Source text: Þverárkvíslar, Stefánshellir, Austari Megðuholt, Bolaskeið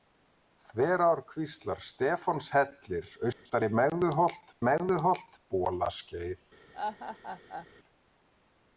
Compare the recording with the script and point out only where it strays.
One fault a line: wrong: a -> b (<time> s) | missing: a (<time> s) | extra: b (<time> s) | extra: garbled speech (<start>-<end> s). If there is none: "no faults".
extra: Megðuholt (4.7 s)